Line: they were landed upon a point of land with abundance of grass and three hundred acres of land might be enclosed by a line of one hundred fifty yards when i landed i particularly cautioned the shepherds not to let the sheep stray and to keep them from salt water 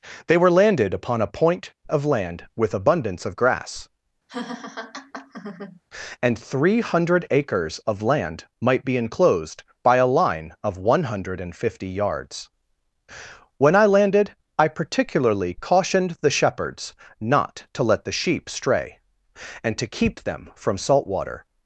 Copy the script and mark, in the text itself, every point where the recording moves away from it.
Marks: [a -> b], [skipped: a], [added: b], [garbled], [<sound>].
they were landed upon a point of land with abundance of grass [laugh] and three hundred acres of land might be enclosed by a line of one hundred fifty yards when i landed i particularly cautioned the shepherds not to let the sheep stray and to keep them from salt water